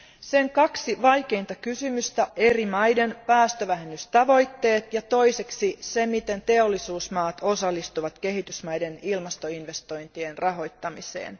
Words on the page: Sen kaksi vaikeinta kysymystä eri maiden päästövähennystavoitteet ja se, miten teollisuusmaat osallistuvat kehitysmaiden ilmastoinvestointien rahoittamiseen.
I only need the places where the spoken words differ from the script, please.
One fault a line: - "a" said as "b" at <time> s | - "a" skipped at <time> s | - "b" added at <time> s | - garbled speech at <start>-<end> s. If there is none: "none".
none